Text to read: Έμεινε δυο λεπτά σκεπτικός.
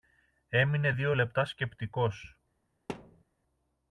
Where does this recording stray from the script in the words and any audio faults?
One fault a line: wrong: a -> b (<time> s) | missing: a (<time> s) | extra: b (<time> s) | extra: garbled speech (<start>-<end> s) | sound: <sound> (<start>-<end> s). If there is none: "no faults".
sound: thud (2.9-3.2 s)